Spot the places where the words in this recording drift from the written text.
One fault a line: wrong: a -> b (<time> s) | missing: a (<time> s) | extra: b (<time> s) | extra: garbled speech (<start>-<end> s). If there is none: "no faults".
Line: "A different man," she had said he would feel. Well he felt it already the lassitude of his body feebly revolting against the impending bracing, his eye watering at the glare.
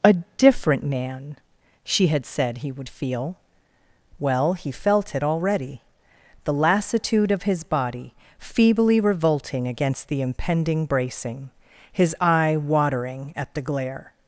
no faults